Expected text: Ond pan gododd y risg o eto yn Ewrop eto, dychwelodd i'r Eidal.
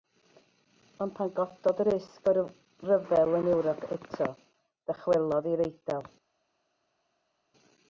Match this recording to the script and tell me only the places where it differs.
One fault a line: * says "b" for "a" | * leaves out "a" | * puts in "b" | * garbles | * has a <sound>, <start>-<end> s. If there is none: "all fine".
* says "ryfel" for "eto"